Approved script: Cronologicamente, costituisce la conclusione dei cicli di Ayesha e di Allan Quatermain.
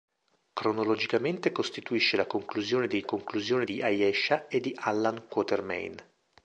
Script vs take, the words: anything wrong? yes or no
yes